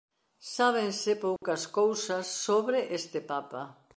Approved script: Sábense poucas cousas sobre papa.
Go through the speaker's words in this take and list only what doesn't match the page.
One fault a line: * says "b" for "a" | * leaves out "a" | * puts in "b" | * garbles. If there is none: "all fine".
* puts in "este"